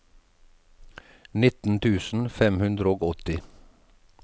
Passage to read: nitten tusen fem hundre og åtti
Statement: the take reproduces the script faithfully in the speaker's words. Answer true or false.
true